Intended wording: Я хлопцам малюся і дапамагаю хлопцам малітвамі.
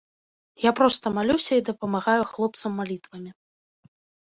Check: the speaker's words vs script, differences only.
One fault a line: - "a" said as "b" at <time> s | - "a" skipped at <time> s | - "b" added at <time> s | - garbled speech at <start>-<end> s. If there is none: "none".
- "хлопцам" said as "проста" at 0.8 s